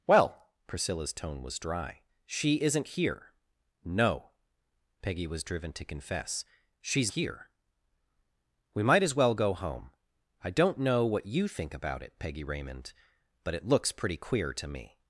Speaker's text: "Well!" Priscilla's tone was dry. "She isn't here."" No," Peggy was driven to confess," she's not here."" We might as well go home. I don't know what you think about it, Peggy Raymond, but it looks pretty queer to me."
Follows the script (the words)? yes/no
no